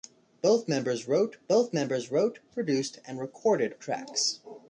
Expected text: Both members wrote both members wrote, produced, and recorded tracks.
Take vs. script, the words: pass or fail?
pass